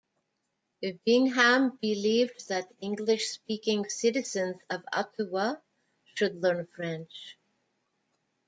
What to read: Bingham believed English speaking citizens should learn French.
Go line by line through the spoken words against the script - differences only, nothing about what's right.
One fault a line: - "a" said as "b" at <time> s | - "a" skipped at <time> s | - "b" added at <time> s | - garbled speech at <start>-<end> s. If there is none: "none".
- "that" added at 2.5 s
- "of Ottawa" added at 4.7 s